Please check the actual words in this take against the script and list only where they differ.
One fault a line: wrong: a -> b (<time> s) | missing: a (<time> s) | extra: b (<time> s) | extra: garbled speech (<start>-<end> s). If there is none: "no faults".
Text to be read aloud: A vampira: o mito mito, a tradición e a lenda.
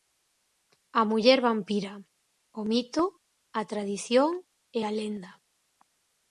extra: muller (1.1 s)
missing: mito (3.0 s)